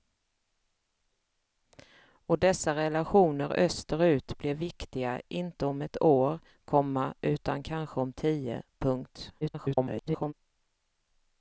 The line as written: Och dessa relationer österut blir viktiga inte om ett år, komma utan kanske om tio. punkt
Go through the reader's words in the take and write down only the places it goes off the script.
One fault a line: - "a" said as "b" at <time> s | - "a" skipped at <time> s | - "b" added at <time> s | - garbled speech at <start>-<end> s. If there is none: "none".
- garbled speech at 9.4-10.3 s